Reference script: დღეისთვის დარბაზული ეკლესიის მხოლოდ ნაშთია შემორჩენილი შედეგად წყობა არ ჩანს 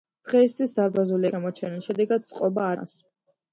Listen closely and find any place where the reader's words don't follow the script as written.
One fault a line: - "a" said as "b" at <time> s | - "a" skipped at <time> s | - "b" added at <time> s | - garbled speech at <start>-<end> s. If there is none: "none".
- "ეკლესიის მხოლოდ ნაშთია" skipped at 1.3 s
- "არ" skipped at 2.7 s